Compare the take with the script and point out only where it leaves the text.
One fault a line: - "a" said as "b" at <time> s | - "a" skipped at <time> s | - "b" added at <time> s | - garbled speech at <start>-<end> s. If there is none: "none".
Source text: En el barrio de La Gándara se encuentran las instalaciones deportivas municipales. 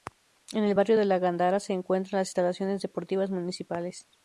none